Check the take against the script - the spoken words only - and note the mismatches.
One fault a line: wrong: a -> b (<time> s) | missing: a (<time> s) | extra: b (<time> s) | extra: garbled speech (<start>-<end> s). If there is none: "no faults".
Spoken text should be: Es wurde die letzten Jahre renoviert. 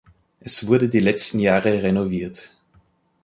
no faults